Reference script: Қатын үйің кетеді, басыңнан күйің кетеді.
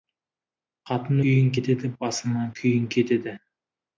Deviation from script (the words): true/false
false